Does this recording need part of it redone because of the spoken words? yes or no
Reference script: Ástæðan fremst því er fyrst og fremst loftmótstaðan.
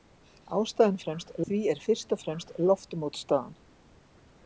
no